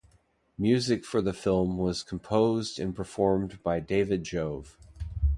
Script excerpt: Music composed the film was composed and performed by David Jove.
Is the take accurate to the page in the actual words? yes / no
no